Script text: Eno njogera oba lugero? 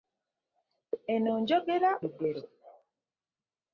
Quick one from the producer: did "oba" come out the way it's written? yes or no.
no